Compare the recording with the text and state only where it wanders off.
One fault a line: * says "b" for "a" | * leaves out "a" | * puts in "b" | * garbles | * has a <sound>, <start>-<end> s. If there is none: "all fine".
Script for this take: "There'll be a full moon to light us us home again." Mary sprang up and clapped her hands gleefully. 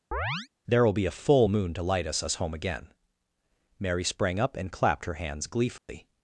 * has a chirp, 0.1-0.5 s
* has a dropout, 5.8-5.9 s